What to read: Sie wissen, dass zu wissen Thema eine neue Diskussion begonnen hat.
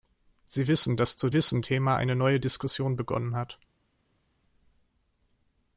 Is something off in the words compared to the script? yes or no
no